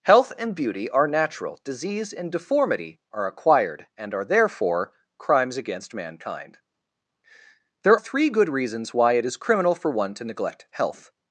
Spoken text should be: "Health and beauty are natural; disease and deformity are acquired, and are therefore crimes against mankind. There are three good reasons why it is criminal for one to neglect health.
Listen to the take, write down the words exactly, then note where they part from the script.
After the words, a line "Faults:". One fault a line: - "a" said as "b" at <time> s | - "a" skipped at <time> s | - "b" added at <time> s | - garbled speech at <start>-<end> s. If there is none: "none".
"Health and beauty are natural; disease and deformity are acquired, and are therefore crimes against mankind. There three good reasons why it is criminal for one to neglect health.
Faults:
- "are" skipped at 8.0 s